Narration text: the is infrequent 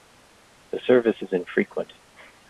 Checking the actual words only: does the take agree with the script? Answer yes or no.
no